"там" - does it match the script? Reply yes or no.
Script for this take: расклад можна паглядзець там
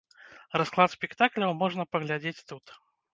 no